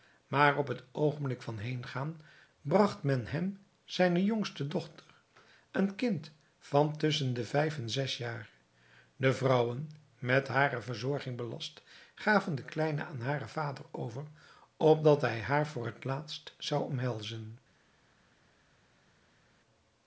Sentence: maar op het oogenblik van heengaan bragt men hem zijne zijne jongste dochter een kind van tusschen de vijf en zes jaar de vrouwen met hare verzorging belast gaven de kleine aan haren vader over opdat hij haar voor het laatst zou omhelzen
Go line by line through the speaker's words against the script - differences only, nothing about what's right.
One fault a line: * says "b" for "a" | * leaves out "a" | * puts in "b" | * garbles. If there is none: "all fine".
* leaves out "zijne"